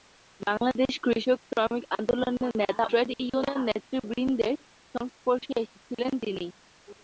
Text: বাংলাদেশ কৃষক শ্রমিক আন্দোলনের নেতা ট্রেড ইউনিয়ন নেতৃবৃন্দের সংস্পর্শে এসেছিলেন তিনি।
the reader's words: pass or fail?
pass